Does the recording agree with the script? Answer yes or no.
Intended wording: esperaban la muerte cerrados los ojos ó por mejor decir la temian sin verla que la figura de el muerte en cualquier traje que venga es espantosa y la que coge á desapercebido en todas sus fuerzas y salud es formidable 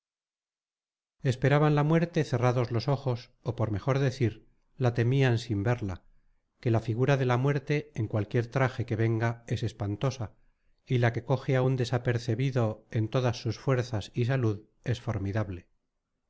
no